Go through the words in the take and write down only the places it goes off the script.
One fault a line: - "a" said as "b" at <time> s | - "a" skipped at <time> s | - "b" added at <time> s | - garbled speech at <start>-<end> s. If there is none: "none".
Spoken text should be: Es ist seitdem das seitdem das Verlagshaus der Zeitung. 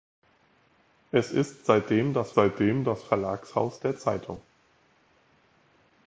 none